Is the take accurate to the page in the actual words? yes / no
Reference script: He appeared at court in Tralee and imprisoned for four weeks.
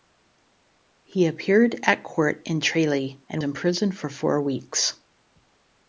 yes